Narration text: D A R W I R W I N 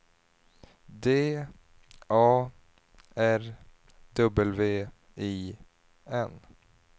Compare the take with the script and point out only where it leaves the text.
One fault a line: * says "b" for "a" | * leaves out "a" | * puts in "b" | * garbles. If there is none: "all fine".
* leaves out "R W I"